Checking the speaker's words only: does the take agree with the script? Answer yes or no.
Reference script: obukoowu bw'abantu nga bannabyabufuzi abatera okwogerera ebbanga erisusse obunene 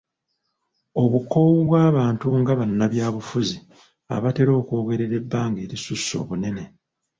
yes